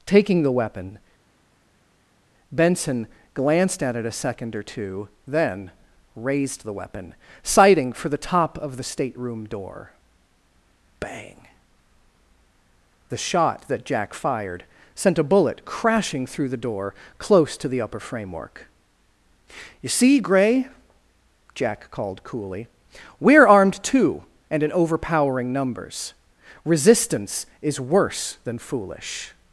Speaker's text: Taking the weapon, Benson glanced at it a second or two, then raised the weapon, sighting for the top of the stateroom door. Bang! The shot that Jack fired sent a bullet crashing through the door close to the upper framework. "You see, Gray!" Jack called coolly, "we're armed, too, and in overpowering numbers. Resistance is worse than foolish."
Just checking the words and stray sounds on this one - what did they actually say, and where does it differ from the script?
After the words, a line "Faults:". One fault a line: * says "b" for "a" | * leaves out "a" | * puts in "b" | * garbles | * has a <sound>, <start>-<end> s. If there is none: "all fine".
Taking the weapon, Benson glanced at it a second or two, then raised the weapon, sighting for the top of the stateroom door. Bang! The shot that Jack fired sent a bullet crashing through the door close to the upper framework. "You see, Gray!" Jack called coolly, "we're armed, too, and in overpowering numbers. Resistance is worse than foolish."
Faults:
all fine